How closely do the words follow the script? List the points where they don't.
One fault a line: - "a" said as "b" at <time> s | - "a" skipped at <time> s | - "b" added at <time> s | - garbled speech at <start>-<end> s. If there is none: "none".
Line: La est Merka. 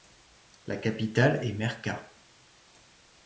- "capitale" added at 0.8 s